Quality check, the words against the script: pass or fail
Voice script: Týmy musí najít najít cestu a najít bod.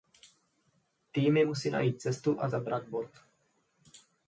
fail